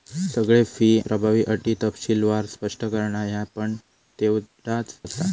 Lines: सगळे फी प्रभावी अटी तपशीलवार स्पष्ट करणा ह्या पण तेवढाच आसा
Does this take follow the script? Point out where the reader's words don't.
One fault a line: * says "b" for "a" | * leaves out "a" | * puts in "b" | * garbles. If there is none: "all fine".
all fine